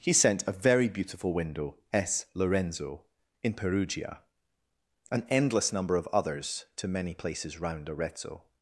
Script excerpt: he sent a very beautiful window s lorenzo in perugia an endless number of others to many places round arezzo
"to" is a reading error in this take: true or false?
false